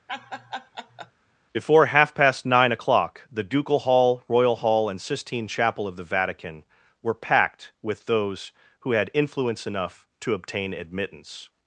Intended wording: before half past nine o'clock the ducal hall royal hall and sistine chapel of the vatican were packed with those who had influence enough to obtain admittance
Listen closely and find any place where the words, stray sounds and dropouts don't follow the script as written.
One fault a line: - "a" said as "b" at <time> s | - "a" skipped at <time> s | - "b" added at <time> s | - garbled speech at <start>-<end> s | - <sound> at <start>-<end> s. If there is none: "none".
- laugh at 0.1-1.1 s